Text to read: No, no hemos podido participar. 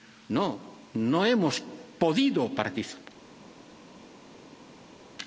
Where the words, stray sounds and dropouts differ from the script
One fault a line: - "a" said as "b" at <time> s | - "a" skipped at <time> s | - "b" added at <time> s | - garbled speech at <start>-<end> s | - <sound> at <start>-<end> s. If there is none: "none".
none